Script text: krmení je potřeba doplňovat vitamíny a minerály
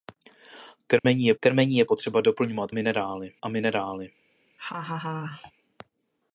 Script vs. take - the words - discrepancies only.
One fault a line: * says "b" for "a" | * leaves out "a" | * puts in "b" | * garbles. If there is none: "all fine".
* puts in "krmení je"
* says "minerály" for "vitamíny"